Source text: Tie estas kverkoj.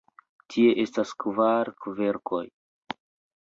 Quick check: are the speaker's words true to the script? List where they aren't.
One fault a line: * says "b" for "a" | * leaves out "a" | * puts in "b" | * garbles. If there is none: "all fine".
* puts in "kvar"